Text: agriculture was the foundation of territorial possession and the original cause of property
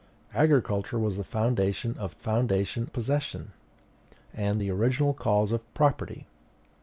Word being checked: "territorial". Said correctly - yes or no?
no